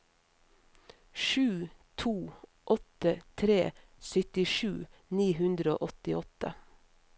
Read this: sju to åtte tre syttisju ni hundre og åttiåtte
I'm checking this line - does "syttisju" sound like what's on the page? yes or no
yes